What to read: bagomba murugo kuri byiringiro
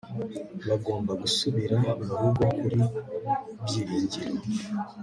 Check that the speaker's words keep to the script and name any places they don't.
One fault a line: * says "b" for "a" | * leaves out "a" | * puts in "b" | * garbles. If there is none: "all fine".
* puts in "gusubira"